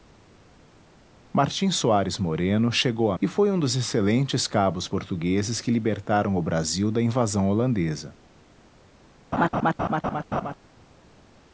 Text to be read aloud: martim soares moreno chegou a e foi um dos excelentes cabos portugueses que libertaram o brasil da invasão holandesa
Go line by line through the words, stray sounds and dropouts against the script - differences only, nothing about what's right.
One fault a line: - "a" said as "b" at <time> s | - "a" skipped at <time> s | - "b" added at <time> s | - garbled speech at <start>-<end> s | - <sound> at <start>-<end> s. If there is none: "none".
- laugh at 9.3-10.5 s